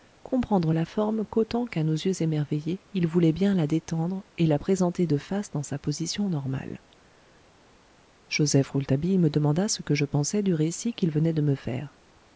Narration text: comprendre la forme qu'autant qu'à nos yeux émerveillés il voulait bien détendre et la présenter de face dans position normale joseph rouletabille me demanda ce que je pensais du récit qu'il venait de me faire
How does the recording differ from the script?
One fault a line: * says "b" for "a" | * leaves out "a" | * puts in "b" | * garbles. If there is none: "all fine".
* puts in "la"
* puts in "sa"